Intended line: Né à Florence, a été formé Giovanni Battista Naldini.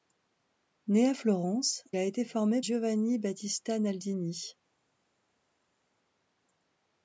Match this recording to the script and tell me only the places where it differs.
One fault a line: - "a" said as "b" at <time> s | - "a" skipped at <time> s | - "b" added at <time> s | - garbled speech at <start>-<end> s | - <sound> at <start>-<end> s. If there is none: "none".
none